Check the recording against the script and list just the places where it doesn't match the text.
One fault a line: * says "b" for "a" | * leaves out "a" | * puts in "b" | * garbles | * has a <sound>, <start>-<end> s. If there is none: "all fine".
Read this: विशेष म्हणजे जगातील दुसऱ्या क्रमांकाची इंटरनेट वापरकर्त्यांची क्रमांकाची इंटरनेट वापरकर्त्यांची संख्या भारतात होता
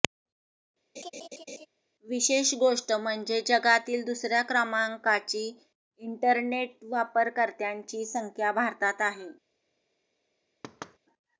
* has a laugh, 1.0-1.7 s
* puts in "गोष्ट"
* leaves out "क्रमांकाची इंटरनेट वापरकर्त्यांची"
* says "आहे" for "होता"
* has a thud, 10.6-11.0 s